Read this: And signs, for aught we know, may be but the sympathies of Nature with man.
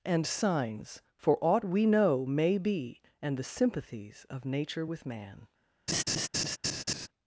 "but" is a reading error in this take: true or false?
true